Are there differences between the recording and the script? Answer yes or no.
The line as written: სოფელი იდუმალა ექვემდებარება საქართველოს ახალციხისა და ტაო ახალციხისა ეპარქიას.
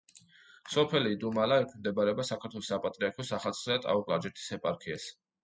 yes